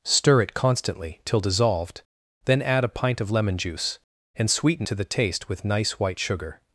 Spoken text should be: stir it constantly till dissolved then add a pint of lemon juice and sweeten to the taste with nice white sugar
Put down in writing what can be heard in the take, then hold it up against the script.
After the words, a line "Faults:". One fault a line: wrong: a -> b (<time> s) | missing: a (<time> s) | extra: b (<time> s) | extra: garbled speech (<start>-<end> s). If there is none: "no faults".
stir it constantly till dissolved then add a pint of lemon juice and sweeten to the taste with nice white sugar
Faults:
no faults